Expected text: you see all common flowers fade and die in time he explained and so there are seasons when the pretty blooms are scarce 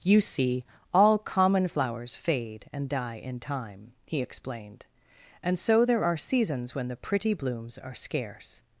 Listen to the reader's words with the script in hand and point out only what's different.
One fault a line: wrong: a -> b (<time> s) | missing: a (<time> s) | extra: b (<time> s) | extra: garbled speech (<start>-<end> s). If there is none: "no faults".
no faults